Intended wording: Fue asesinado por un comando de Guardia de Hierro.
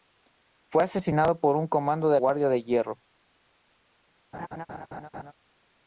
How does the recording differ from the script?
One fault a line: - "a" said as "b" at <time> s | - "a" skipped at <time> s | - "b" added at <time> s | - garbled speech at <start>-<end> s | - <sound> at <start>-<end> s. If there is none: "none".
- laugh at 4.3-5.3 s